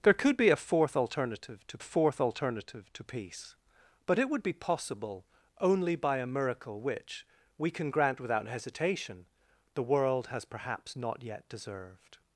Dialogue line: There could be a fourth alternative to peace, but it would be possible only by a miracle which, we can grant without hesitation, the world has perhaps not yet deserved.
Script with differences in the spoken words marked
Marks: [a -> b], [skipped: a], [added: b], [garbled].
There could be a fourth alternative to [added: fourth alternative to] peace, but it would be possible only by a miracle which, we can grant without hesitation, the world has perhaps not yet deserved.